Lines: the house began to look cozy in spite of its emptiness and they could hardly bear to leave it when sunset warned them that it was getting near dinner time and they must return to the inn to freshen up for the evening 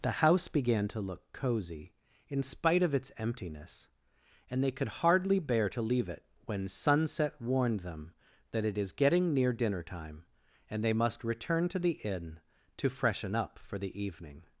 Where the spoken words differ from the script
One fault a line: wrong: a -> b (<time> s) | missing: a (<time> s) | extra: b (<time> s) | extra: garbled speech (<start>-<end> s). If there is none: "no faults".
wrong: was -> is (8.8 s)